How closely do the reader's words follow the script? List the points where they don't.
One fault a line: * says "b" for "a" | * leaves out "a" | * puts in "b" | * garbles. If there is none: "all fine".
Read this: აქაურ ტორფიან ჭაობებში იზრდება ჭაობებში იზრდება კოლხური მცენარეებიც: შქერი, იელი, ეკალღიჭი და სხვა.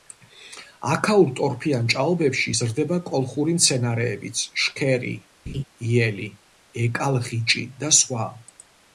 * leaves out "ჭაობებში იზრდება"